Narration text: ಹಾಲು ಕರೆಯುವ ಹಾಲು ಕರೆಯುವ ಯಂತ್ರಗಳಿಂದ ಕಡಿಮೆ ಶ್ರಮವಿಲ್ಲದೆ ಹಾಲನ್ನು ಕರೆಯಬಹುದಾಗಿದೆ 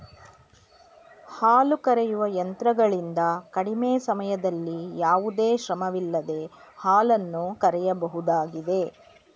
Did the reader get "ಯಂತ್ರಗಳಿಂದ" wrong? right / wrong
wrong